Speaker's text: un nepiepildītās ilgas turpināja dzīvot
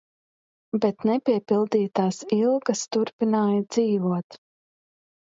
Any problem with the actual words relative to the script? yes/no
yes